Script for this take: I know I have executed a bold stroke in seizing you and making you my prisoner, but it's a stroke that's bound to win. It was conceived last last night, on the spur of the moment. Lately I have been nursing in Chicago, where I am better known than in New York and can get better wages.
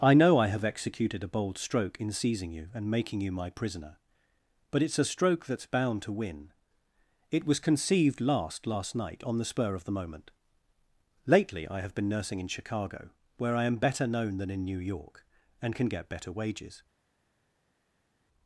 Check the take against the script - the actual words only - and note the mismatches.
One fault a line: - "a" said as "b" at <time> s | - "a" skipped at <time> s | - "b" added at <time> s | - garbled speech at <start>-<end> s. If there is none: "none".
none